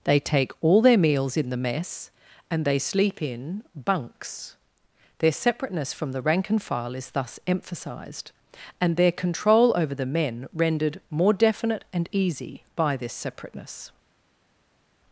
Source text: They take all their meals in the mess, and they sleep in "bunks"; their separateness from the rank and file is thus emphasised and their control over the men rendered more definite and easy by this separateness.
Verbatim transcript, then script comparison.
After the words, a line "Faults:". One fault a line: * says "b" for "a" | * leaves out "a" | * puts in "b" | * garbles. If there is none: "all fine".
They take all their meals in the mess, and they sleep in "bunks"; their separateness from the rank and file is thus emphasised and their control over the men rendered more definite and easy by this separateness.
Faults:
all fine